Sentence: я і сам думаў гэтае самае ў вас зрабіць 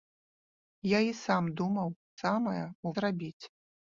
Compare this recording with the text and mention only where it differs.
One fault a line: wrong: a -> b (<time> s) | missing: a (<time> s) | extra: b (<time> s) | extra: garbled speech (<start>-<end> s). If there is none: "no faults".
missing: гэтае (1.9 s)
missing: вас (2.9 s)